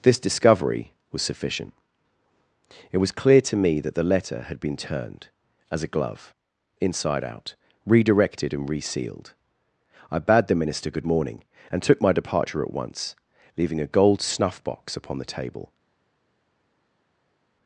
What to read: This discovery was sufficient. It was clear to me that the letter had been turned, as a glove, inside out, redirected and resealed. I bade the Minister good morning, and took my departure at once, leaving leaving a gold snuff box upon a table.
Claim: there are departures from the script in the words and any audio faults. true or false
true